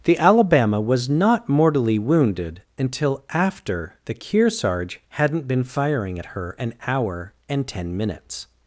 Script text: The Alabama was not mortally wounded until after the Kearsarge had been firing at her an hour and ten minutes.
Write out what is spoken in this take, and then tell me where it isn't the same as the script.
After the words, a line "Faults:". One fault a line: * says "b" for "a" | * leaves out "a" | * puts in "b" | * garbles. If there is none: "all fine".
The Alabama was not mortally wounded until after the Kearsarge hadn't been firing at her an hour and ten minutes.
Faults:
* says "hadn't" for "had"